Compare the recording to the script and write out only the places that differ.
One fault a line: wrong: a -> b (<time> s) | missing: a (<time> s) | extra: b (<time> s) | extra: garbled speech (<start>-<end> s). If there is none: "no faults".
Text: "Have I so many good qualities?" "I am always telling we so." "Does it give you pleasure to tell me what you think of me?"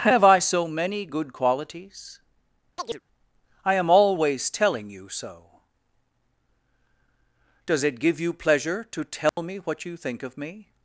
wrong: we -> you (4.9 s)